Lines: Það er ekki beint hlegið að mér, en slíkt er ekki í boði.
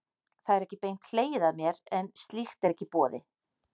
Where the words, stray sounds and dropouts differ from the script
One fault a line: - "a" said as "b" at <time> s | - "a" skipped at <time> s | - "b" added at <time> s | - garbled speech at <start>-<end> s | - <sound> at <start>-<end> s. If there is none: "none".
none